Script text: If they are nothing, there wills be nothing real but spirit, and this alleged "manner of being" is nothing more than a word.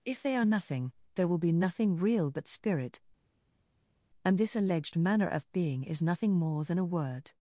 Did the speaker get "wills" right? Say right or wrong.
wrong